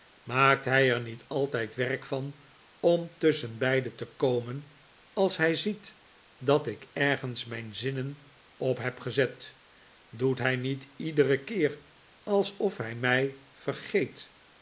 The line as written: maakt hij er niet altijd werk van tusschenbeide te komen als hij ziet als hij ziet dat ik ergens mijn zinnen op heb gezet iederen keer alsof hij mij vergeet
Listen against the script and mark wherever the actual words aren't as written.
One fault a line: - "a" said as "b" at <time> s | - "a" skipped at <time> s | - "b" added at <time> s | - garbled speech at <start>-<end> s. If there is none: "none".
- "om" added at 2.8 s
- "als hij ziet" skipped at 6.0 s
- "doet hij niet" added at 10.1 s